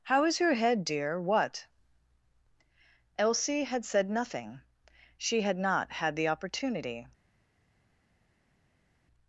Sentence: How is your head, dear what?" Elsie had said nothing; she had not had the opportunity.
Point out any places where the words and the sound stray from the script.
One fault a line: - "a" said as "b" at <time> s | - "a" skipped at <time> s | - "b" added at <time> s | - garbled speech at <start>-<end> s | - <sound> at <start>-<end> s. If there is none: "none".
none